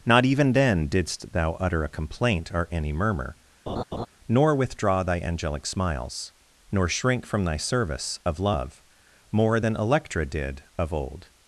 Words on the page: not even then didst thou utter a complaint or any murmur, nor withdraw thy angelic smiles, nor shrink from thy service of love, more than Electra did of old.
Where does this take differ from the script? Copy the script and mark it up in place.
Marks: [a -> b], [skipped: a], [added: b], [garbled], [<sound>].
not even then didst thou utter a complaint or any murmur, [laugh] nor withdraw thy angelic smiles, nor shrink from thy service of love, more than Electra did of old.